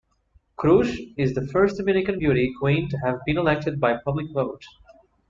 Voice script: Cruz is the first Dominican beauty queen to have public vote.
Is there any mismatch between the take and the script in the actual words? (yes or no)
yes